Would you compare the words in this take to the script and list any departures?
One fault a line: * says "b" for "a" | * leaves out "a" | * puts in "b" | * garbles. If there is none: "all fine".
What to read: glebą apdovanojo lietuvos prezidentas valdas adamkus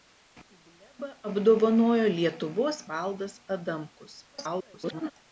* leaves out "prezidentas"
* garbles